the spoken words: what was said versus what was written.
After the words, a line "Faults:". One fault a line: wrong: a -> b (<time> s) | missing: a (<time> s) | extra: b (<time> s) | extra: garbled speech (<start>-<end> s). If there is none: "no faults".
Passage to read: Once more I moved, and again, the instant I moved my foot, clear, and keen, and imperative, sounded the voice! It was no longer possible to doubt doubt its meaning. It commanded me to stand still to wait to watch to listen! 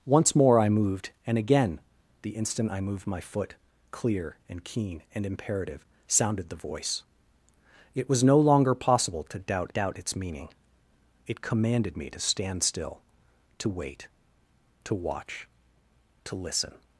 Once more I moved, and again, the instant I moved my foot, clear, and keen, and imperative, sounded the voice! It was no longer possible to doubt doubt its meaning. It commanded me to stand still to wait to watch to listen!
Faults:
no faults